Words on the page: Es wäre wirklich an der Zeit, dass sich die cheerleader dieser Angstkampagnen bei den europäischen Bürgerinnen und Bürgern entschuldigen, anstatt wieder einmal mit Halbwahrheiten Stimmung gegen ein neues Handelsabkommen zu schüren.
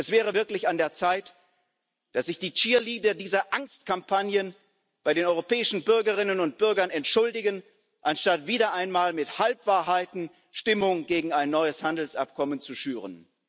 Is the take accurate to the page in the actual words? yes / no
yes